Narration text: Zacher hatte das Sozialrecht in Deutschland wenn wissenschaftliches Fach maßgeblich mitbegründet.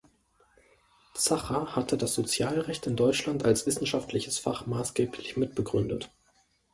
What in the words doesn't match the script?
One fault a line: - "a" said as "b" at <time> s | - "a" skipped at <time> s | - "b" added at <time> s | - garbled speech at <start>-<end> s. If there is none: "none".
- "wenn" said as "als" at 3.5 s